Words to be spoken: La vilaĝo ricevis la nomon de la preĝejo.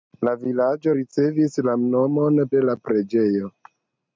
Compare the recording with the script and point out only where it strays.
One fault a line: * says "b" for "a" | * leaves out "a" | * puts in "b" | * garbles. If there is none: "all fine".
all fine